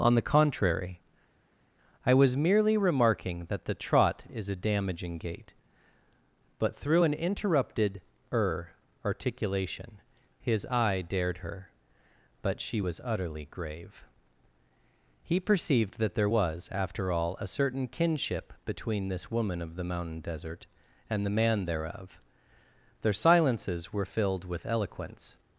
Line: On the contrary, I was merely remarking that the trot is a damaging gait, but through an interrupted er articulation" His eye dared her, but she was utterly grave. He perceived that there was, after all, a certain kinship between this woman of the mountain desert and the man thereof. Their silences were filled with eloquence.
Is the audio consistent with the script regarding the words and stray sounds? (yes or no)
yes